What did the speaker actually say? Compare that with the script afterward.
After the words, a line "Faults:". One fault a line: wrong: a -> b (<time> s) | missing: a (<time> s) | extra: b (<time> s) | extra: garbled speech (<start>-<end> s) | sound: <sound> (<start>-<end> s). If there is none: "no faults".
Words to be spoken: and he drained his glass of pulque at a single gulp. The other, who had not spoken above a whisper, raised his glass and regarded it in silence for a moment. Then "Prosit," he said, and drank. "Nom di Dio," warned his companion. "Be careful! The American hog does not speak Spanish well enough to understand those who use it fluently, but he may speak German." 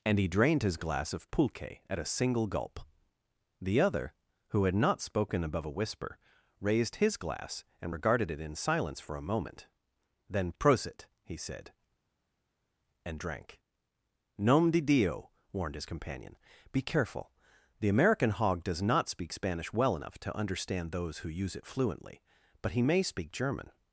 and he drained his glass of pulque at a single gulp. The other, who had not spoken above a whisper, raised his glass and regarded it in silence for a moment. Then "Prosit," he said, and drank. "Nom di Dio," warned his companion. "Be careful! The American hog does not speak Spanish well enough to understand those who use it fluently, but he may speak German."
Faults:
no faults